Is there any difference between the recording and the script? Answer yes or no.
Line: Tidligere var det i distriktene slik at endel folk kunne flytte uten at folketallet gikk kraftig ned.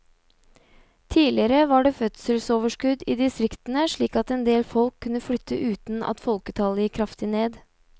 yes